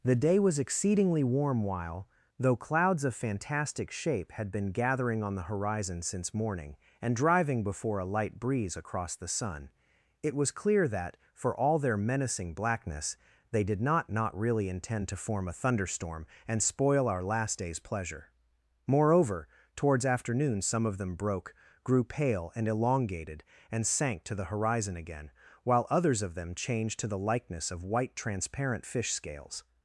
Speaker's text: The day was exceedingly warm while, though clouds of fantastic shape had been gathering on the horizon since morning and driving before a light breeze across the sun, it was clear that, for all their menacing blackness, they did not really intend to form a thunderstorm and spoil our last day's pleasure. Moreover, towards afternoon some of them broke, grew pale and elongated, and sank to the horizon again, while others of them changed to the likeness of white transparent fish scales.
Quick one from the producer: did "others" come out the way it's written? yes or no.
yes